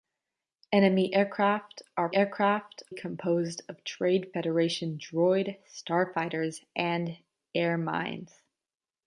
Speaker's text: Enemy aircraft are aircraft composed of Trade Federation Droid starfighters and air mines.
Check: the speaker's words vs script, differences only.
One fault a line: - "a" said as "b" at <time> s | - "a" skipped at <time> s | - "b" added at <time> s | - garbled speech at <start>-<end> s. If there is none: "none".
none